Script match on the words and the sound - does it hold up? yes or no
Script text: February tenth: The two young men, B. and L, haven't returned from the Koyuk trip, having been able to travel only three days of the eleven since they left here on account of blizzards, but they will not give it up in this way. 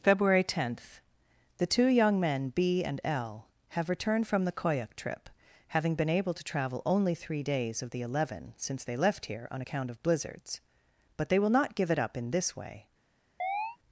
no